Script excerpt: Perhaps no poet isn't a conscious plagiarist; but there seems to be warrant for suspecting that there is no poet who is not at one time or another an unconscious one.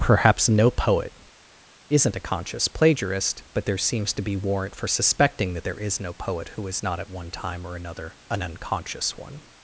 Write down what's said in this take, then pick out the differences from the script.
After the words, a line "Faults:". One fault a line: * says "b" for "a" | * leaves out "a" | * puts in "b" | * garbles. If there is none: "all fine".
Perhaps no poet isn't a conscious plagiarist; but there seems to be warrant for suspecting that there is no poet who is not at one time or another an unconscious one.
Faults:
all fine